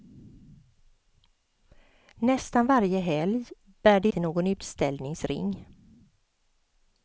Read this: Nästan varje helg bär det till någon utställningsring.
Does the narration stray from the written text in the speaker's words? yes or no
no